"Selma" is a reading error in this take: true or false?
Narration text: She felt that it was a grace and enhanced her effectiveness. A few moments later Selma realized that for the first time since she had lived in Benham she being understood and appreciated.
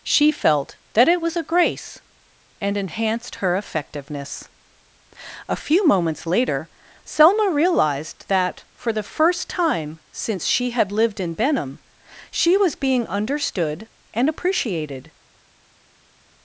false